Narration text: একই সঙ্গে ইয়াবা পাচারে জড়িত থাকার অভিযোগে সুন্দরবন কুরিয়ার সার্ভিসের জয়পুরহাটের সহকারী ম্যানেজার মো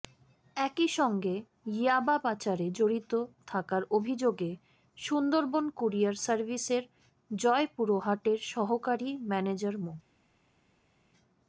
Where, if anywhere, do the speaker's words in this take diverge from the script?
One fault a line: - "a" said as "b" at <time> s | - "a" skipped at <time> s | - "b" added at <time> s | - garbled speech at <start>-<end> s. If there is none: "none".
none